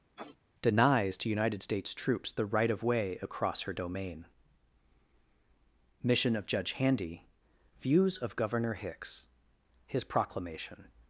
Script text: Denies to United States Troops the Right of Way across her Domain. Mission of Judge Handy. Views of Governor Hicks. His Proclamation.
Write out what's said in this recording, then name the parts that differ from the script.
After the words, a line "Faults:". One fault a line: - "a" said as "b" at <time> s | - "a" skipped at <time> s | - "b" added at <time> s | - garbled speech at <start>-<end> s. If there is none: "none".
Denies to United States Troops the Right of Way across her Domain. Mission of Judge Handy. Views of Governor Hicks. His Proclamation.
Faults:
none